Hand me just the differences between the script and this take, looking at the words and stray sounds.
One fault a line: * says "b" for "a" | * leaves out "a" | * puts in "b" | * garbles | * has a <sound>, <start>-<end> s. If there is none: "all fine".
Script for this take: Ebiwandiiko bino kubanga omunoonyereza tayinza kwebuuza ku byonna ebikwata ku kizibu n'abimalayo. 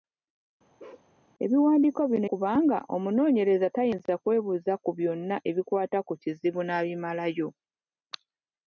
* has a bark, 0.8-1.1 s